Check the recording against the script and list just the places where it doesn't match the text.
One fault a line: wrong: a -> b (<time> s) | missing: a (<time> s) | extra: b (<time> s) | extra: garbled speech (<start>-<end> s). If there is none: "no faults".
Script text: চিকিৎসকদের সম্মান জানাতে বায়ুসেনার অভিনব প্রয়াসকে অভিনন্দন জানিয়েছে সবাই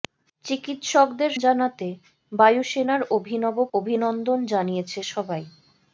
missing: সম্মান (1.3 s)
missing: প্রয়াসকে (3.6 s)